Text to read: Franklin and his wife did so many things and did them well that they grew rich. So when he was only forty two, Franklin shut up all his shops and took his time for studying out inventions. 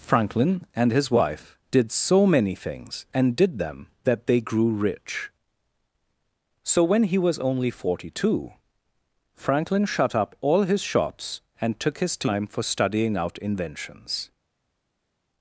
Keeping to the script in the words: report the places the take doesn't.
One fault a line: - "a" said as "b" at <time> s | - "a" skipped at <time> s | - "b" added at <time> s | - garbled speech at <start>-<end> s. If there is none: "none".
- "well" skipped at 3.9 s